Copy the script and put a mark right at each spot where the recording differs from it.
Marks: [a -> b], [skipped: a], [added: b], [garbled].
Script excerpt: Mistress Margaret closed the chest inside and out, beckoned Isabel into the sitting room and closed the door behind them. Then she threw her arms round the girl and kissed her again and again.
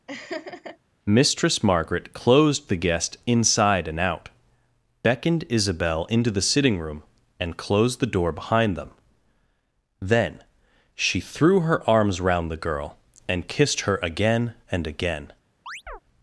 Mistress Margaret closed the [chest -> guest] inside and out, beckoned Isabel into the sitting room and closed the door behind them. Then she threw her arms round the girl and kissed her again and again.